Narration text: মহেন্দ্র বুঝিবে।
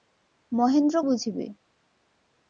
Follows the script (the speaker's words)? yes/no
yes